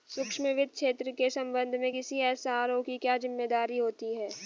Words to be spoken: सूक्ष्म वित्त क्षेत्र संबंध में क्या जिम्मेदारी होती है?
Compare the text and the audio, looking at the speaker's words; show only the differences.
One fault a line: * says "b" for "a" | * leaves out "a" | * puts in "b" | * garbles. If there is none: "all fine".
* puts in "के"
* puts in "किसी एस.आर.ओ की"